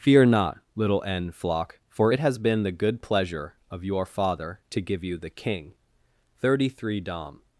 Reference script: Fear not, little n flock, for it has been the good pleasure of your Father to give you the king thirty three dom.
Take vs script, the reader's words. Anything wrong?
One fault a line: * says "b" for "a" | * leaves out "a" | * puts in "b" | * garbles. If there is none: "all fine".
all fine